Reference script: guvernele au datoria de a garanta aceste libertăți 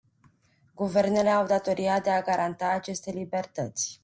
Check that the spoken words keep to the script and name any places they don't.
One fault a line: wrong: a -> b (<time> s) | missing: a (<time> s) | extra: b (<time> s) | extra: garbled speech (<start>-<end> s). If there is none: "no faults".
no faults